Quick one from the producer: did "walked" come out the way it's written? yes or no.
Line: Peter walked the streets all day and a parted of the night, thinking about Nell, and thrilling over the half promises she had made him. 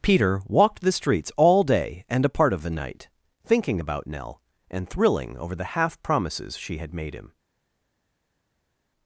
yes